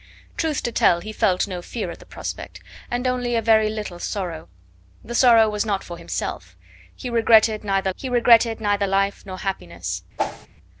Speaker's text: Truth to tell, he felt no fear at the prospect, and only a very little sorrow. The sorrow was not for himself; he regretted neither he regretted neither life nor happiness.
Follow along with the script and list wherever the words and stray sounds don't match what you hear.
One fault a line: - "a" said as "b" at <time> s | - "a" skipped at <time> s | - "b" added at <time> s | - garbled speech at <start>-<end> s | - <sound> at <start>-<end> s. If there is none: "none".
- whoosh at 10.2-10.5 s